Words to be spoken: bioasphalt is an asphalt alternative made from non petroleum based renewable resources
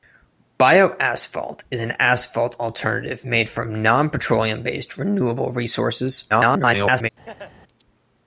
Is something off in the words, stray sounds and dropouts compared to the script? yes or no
yes